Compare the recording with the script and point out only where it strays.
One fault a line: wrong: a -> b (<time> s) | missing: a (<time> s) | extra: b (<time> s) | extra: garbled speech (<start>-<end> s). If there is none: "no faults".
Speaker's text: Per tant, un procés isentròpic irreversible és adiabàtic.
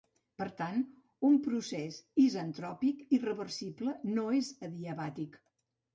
extra: no (4.1 s)